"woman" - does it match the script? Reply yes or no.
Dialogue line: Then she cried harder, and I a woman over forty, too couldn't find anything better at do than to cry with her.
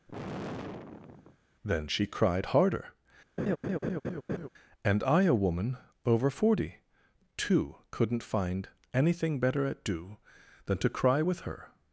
yes